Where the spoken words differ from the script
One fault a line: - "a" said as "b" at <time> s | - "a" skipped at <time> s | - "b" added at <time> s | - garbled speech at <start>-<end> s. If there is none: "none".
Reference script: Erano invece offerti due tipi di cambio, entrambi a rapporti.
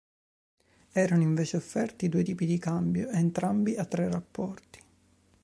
- "tre" added at 3.8 s